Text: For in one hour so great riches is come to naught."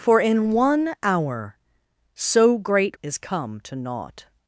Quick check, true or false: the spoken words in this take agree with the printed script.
false